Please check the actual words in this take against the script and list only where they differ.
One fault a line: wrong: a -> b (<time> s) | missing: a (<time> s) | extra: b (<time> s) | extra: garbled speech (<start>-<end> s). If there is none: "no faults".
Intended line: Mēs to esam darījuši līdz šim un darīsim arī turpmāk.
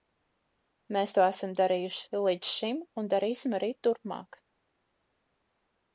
no faults